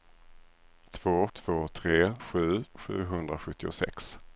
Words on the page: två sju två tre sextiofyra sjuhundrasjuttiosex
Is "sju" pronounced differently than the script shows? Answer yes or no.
yes